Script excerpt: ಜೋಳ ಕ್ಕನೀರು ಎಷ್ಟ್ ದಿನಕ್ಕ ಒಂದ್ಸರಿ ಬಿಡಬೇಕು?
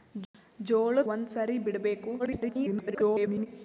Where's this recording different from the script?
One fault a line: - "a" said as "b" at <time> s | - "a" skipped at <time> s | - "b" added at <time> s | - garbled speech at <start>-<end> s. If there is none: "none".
- "ಕ್ಕನೀರು ಎಷ್ಟ್ ದಿನಕ್ಕ" skipped at 1.0 s
- garbled speech at 2.2-3.5 s